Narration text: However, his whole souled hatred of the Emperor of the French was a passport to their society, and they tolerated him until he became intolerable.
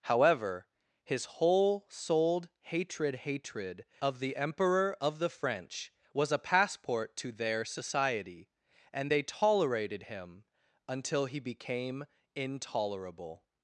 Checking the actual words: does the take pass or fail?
fail